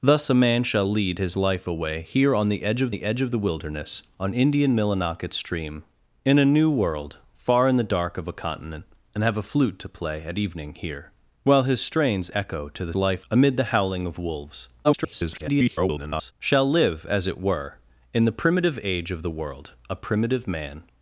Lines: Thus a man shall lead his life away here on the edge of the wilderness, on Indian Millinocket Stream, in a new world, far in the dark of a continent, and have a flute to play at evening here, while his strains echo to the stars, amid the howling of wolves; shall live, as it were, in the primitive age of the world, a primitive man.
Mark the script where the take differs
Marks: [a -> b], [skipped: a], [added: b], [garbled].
Thus a man shall lead his life away here on the edge of the [added: edge of the] wilderness, on Indian Millinocket Stream, in a new world, far in the dark of a continent, and have a flute to play at evening here, while his strains echo to the [stars, -> life] amid the howling of wolves; [garbled] shall live, as it were, in the primitive age of the world, a primitive man.